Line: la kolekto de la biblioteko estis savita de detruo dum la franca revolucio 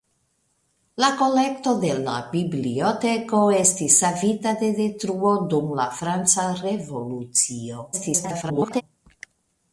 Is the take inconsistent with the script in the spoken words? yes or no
yes